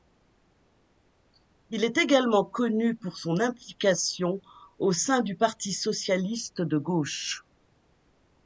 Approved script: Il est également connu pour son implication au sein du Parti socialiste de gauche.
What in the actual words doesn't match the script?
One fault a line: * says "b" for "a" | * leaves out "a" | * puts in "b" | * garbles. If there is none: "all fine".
all fine